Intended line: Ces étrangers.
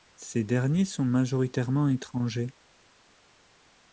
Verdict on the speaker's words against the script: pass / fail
fail